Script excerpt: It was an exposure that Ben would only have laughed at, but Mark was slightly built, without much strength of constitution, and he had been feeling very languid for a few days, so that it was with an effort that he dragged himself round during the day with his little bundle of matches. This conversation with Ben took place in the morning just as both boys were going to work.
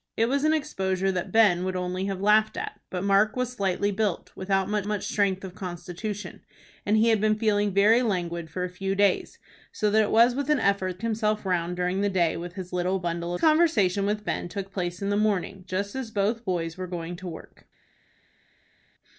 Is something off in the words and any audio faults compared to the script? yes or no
yes